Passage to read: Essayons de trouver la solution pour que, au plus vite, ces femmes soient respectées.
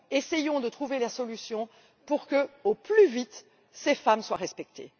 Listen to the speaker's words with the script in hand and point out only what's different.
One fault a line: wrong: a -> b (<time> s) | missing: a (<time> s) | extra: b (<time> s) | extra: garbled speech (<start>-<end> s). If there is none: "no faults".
no faults